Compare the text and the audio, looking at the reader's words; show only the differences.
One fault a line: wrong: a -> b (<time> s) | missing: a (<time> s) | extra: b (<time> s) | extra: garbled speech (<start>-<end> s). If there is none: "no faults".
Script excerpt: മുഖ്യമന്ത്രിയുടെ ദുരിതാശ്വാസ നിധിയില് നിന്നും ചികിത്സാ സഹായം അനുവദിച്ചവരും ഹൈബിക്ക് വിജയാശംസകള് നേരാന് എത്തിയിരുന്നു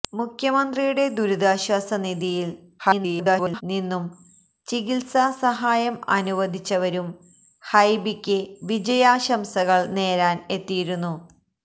extra: garbled speech (2.8-3.6 s)